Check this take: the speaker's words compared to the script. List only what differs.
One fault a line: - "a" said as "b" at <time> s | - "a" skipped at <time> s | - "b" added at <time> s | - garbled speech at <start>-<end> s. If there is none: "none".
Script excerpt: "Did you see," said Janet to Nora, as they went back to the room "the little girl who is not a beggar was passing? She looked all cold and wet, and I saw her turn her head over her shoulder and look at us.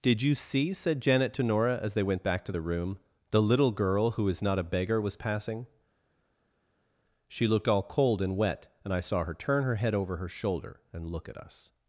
none